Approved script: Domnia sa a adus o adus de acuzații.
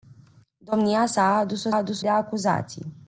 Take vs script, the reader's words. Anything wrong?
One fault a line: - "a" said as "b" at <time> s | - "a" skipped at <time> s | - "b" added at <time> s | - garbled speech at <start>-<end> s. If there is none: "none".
none